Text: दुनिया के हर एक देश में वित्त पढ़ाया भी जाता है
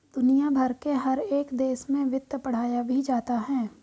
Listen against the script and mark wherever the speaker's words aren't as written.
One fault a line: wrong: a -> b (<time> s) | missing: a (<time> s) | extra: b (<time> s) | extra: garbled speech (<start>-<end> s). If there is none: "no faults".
extra: भर (0.5 s)